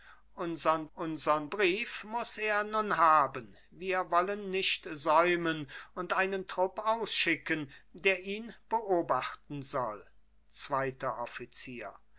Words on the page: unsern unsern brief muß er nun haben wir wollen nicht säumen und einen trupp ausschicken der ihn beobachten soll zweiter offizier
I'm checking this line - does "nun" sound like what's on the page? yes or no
yes